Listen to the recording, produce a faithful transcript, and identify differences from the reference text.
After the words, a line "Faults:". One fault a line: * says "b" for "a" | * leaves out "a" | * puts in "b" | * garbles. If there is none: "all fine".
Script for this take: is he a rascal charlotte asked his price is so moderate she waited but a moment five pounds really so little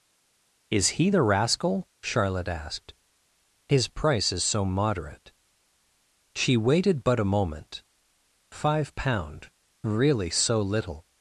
is he the rascal charlotte asked his price is so moderate she waited but a moment five pound really so little
Faults:
* says "the" for "a"
* says "pound" for "pounds"